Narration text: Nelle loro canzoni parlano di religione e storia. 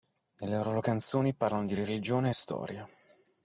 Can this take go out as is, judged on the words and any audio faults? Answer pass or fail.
pass